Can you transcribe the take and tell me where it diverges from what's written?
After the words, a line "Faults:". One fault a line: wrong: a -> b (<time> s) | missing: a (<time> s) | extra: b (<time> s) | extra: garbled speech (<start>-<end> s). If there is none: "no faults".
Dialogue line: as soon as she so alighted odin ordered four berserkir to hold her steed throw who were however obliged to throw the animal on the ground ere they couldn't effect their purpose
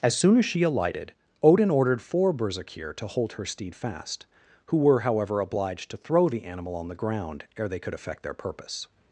as soon as she alighted odin ordered four berserkir to hold her steed fast who were however obliged to throw the animal on the ground ere they could effect their purpose
Faults:
missing: so (0.6 s)
wrong: throw -> fast (3.7 s)
wrong: couldn't -> could (7.8 s)